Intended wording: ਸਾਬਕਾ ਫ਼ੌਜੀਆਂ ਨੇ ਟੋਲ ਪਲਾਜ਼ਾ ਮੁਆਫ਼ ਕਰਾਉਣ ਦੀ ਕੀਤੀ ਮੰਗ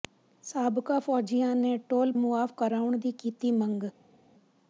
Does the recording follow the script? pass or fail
fail